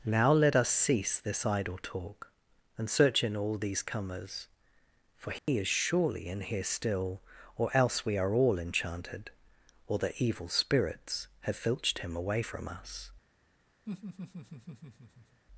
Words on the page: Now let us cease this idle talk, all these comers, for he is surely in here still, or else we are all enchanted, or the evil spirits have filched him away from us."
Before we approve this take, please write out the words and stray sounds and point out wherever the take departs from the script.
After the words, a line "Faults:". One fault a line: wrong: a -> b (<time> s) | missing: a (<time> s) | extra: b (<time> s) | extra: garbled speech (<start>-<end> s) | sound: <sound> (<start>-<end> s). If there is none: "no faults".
Now let us cease this idle talk, and search in all these comers, for he is surely in here still, or else we are all enchanted, or the evil spirits have filched him away from us."
Faults:
extra: and search in (2.8 s)
sound: dropout (5.4-5.5 s)
sound: laugh (13.9-15.4 s)